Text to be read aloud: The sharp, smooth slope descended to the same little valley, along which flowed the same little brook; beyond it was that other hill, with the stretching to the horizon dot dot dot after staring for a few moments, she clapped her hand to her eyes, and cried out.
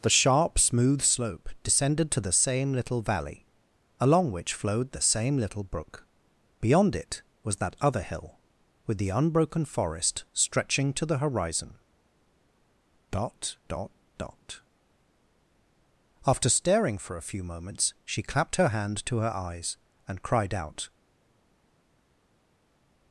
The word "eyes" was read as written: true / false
true